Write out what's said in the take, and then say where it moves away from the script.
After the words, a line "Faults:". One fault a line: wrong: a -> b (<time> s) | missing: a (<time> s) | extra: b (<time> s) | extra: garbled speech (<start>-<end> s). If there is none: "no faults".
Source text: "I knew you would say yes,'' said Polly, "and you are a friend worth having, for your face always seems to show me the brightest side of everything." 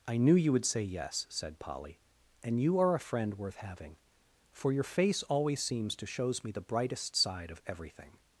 "I knew you would say yes,'' said Polly, "and you are a friend worth having, for your face always seems to shows me the brightest side of everything."
Faults:
wrong: show -> shows (6.0 s)